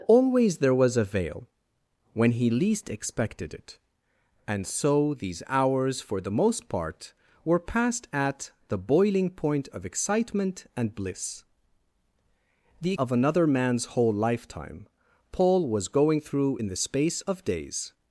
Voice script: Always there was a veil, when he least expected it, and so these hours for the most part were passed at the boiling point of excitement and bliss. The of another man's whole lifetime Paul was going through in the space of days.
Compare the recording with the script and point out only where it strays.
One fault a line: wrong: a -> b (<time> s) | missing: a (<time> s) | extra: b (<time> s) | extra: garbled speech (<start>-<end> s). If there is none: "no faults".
no faults